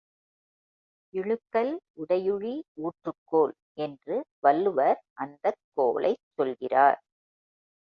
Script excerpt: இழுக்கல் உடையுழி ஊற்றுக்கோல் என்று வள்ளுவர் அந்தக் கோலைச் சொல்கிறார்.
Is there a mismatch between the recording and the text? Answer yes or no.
no